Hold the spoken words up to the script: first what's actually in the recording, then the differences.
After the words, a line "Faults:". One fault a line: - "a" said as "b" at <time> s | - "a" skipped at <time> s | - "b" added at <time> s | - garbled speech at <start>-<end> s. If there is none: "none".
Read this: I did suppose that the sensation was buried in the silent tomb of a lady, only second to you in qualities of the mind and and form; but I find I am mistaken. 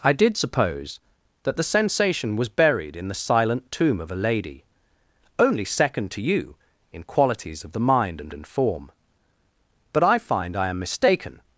I did suppose that the sensation was buried in the silent tomb of a lady, only second to you in qualities of the mind and and form; but I find I am mistaken.
Faults:
none